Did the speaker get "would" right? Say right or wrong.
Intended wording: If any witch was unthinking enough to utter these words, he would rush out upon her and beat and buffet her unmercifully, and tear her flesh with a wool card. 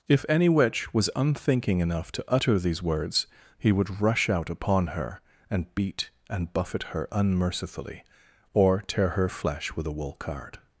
right